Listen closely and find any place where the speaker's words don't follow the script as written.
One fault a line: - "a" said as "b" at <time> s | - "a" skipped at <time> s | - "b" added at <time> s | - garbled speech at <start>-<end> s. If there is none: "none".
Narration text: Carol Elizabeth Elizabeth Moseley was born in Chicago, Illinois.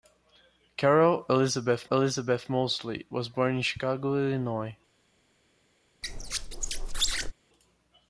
none